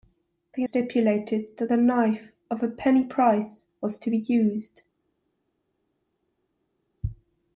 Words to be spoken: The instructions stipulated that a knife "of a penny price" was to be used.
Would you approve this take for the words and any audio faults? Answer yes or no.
no